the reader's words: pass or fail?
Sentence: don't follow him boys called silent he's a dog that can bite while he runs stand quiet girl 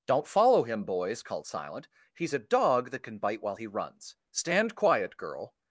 pass